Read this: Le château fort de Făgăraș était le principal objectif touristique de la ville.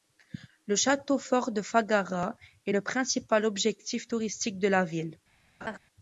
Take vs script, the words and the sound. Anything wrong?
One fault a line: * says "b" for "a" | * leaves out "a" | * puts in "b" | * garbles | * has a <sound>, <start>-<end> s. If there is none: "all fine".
* says "est" for "était"
* has a laugh, 5.6-5.8 s